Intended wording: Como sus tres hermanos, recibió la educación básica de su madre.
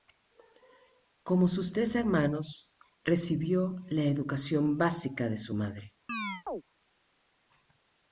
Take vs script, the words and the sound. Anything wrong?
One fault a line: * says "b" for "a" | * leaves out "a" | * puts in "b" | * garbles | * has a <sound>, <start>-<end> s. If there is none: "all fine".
* has a chirp, 6.1-6.6 s